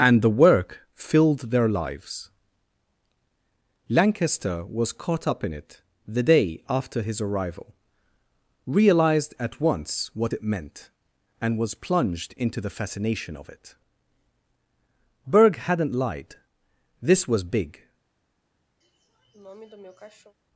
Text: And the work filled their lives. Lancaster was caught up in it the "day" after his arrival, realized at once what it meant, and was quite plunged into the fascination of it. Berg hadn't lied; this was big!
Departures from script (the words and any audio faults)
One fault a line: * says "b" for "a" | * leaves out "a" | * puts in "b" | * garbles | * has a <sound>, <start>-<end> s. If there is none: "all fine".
* leaves out "quite"
* has a sniff, 18.8-20.3 s